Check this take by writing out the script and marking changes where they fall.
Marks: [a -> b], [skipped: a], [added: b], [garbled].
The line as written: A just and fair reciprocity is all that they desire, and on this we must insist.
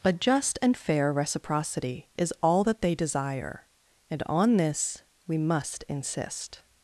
A just and fair reciprocity is all that they desire, and on this we must insist.